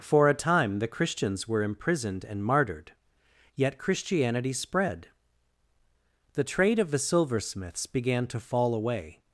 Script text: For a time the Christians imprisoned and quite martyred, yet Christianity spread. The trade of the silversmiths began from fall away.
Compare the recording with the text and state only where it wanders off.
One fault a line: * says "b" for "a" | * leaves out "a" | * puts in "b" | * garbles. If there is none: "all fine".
* puts in "were"
* leaves out "quite"
* says "to" for "from"